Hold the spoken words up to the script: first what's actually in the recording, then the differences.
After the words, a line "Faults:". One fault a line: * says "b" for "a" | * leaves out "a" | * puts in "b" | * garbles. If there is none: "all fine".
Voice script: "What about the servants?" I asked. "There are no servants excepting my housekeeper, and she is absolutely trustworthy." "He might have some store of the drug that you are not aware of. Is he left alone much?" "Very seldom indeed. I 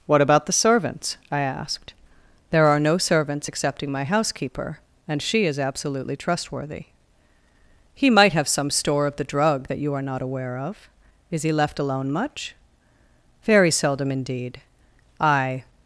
"What about the servants?" I asked. "There are no servants excepting my housekeeper, and she is absolutely trustworthy." "He might have some store of the drug that you are not aware of. Is he left alone much?" "Very seldom indeed. I
Faults:
all fine